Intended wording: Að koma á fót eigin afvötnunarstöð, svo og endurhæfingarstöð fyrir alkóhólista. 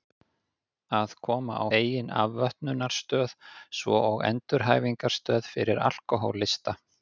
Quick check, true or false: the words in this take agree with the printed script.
false